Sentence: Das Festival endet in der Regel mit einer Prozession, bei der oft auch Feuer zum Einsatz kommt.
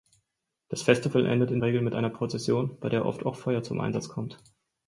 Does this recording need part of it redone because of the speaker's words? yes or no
yes